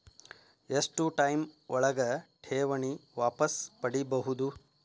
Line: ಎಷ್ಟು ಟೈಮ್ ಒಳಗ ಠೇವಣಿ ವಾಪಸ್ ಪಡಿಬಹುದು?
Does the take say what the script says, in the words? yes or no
yes